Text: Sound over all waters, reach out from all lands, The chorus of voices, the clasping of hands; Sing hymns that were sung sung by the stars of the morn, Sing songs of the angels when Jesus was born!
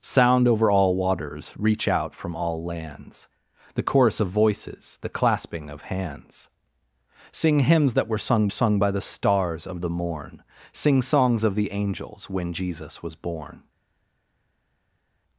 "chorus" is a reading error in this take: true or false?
false